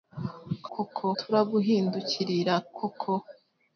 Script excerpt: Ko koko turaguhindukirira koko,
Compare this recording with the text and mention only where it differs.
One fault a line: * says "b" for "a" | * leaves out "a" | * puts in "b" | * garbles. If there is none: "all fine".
all fine